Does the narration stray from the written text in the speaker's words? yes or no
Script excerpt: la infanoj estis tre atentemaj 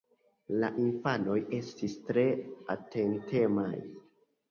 no